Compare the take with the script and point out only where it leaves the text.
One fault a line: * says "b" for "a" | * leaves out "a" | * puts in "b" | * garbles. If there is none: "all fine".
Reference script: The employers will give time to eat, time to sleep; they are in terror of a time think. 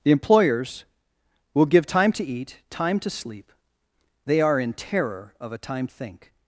all fine